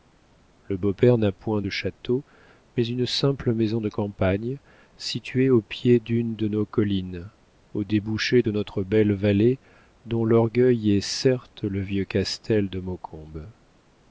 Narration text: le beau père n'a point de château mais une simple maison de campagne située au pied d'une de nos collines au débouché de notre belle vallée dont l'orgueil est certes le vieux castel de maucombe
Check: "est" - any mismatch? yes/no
no